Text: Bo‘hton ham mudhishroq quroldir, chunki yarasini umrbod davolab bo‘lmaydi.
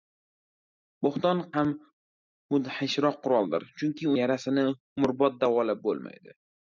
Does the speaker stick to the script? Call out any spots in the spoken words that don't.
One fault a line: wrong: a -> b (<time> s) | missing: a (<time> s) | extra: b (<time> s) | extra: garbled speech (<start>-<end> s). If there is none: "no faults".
no faults